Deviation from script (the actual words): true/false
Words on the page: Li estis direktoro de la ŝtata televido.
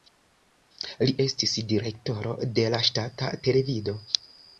false